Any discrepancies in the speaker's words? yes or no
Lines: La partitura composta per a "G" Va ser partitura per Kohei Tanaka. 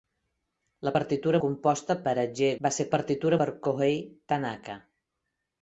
no